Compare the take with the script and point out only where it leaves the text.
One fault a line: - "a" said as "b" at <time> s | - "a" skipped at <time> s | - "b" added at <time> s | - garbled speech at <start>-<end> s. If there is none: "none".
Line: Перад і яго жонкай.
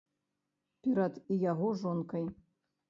none